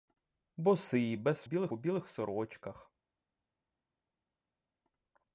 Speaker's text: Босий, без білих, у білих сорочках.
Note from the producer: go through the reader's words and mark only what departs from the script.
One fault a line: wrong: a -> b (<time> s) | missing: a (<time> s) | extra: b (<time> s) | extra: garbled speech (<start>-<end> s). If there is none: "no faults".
no faults